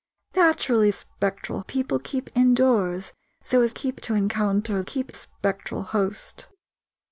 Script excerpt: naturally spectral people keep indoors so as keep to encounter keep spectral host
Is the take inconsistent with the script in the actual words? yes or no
no